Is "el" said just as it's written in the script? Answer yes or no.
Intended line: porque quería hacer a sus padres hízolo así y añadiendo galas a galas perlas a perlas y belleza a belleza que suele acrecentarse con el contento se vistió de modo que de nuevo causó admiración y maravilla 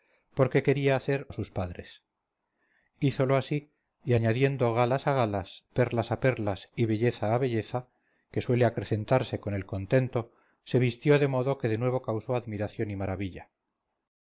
yes